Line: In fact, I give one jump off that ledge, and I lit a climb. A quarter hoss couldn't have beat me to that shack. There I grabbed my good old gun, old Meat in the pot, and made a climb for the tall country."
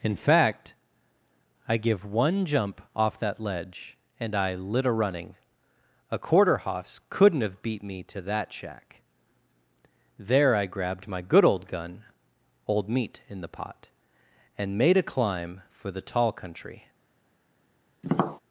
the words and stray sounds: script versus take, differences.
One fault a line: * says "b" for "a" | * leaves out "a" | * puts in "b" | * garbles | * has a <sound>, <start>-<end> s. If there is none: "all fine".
* says "running" for "climb"
* has a tap, 18.0-18.4 s